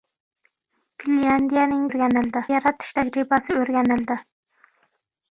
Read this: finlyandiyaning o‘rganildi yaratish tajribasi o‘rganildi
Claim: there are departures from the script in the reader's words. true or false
false